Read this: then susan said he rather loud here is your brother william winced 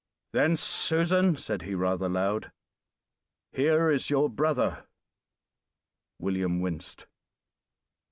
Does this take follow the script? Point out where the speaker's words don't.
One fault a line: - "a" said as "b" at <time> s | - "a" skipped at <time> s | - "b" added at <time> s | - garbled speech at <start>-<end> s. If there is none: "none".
none